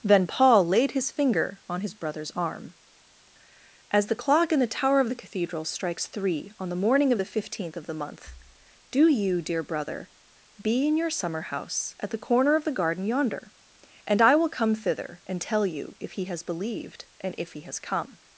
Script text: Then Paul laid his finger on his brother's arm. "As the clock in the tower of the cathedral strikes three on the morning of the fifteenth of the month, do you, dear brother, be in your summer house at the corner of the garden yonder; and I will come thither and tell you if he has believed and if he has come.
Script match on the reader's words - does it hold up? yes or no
yes